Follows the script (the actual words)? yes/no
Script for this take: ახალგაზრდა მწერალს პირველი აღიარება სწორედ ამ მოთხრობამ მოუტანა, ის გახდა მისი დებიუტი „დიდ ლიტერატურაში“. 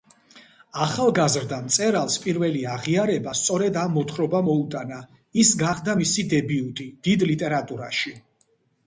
yes